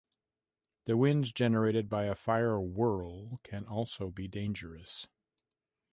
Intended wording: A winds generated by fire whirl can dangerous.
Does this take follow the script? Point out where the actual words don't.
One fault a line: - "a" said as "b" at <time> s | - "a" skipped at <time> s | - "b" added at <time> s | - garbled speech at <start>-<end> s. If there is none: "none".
- "A" said as "The" at 0.8 s
- "a" added at 2.0 s
- "also be" added at 3.7 s